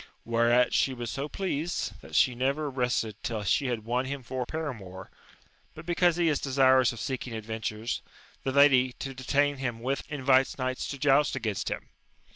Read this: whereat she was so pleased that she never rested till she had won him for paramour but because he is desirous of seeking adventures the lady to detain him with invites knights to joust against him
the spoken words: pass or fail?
pass